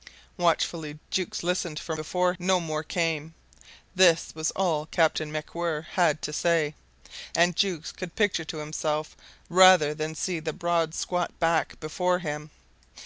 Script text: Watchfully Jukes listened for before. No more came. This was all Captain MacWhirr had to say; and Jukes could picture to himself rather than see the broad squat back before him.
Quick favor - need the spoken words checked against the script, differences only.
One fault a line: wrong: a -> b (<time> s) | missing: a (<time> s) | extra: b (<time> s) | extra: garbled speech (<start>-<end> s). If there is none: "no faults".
no faults